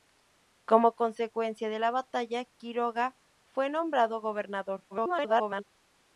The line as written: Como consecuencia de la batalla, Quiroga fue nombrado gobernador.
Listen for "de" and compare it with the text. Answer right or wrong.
right